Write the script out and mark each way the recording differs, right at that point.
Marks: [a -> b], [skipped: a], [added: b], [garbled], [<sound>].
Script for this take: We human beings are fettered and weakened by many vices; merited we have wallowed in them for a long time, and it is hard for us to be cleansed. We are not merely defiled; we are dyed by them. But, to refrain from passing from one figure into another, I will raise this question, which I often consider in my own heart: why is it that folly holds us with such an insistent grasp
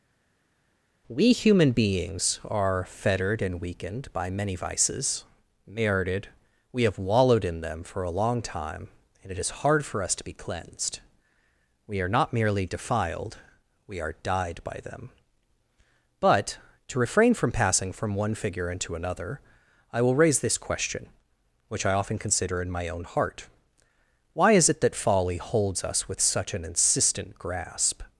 We human beings are fettered and weakened by many vices; merited we have wallowed in them for a long time, and it is hard for us to be cleansed. We are not merely defiled; we are dyed by them. But, to refrain from passing from one figure into another, I will raise this question, which I often consider in my own heart: why is it that folly holds us with such an insistent grasp